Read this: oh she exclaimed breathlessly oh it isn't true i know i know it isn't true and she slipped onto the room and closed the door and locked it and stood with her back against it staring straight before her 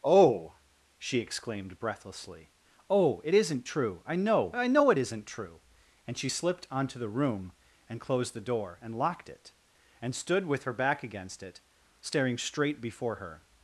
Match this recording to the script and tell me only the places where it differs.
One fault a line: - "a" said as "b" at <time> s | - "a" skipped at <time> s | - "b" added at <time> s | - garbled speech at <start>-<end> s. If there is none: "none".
none